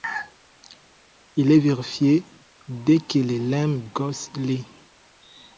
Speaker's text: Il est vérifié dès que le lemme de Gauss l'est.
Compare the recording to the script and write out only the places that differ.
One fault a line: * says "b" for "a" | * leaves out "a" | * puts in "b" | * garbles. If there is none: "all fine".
* leaves out "de"